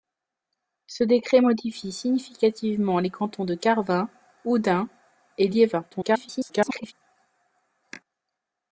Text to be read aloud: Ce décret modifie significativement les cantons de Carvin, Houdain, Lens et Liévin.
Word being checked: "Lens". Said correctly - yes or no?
no